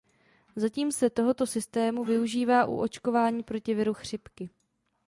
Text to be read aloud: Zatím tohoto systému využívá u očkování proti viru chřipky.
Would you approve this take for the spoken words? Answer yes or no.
no